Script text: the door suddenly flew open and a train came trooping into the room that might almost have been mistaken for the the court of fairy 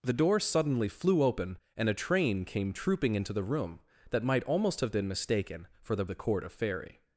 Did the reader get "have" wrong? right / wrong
right